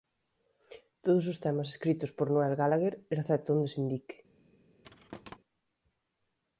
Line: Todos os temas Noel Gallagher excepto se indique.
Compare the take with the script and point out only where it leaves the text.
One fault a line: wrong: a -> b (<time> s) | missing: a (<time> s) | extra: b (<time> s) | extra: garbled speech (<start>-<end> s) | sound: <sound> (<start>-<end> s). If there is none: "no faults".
extra: escritos por (1.7 s)
extra: onde (3.5 s)
sound: thud (4.8-5.4 s)